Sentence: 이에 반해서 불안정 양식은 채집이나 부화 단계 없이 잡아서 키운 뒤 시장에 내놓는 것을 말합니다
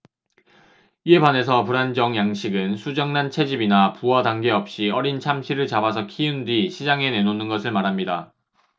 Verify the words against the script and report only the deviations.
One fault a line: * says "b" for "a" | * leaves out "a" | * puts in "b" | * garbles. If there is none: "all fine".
* puts in "수정란"
* puts in "어린 참치를"